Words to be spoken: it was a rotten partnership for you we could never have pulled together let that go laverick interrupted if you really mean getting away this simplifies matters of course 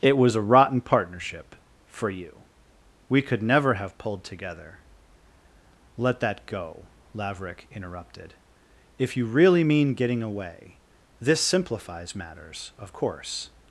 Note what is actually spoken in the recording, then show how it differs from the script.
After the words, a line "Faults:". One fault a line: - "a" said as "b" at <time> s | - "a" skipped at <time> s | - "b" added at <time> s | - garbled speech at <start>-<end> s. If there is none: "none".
it was a rotten partnership for you we could never have pulled together let that go laverick interrupted if you really mean getting away this simplifies matters of course
Faults:
none